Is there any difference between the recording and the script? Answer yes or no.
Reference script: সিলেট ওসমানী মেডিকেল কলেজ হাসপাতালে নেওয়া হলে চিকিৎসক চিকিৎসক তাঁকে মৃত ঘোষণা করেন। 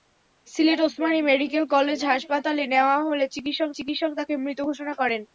no